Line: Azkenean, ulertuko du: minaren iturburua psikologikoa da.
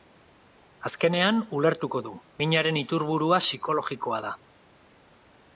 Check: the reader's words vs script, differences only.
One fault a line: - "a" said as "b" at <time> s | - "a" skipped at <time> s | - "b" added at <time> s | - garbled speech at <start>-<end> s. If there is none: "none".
none